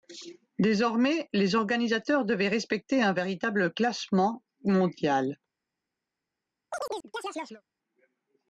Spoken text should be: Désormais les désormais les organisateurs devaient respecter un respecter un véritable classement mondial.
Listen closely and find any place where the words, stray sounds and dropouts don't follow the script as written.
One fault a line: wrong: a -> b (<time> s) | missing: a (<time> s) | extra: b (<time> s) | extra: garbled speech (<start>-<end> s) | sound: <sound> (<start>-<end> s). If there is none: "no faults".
missing: désormais les (1.6 s)
missing: respecter un (3.1 s)
sound: chirp (6.7-7.6 s)